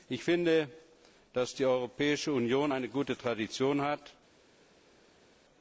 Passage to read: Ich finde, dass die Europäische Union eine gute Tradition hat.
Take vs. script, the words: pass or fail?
pass